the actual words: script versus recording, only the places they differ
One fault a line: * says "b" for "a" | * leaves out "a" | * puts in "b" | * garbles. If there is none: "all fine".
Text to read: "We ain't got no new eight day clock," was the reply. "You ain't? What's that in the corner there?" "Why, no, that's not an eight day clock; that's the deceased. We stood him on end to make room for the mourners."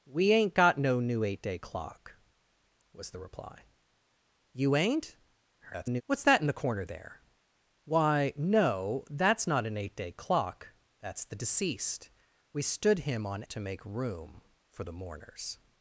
* garbles
* leaves out "end"